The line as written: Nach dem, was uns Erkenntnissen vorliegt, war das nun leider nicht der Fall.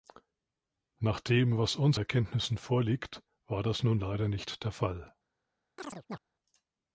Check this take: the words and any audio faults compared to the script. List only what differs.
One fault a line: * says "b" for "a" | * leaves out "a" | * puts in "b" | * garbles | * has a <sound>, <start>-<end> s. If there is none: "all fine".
* has a chirp, 5.8-6.2 s